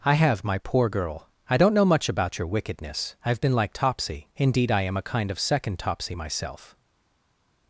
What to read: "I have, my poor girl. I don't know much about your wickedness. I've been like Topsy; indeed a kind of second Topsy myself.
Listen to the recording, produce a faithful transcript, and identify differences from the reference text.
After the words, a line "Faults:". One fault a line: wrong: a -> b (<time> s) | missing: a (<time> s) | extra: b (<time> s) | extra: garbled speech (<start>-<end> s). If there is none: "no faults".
"I have, my poor girl. I don't know much about your wickedness. I've been like Topsy; indeed I am a kind of second Topsy myself.
Faults:
extra: I am (4.7 s)